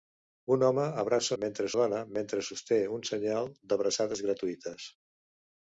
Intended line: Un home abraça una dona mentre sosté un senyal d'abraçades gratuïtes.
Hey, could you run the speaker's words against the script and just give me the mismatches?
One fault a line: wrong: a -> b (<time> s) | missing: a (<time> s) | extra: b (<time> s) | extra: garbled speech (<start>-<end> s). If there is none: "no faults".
wrong: una -> mentre (1.4 s)